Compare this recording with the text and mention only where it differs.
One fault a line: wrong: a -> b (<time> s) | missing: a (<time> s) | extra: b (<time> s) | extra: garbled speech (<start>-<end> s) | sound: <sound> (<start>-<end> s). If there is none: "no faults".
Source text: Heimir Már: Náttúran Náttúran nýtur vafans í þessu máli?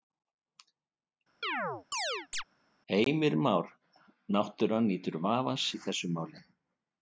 sound: chirp (1.4-2.4 s)
missing: Náttúran (4.9 s)